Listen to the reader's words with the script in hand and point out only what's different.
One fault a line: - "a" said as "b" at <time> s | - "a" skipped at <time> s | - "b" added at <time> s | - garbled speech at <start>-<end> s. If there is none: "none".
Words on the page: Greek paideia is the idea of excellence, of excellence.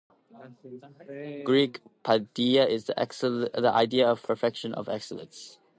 - "excellence" said as "perfection" at 4.2 s